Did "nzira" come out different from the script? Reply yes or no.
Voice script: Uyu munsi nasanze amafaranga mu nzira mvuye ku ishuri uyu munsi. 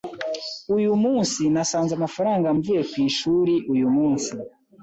yes